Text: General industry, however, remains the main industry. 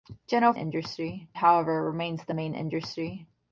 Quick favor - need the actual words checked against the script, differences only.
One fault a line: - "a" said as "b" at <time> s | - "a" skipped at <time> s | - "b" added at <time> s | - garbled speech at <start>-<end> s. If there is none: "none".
none